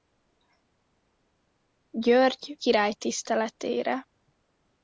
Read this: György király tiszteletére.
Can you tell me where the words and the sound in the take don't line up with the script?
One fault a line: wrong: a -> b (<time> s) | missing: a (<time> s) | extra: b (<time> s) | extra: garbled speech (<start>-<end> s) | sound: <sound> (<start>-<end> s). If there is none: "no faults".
no faults